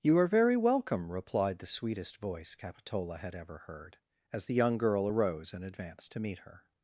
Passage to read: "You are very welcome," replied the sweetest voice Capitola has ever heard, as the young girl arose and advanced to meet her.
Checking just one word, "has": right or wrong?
wrong